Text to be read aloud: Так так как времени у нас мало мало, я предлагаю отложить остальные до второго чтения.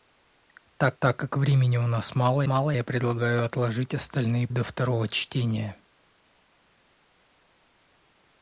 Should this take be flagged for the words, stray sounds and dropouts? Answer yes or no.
no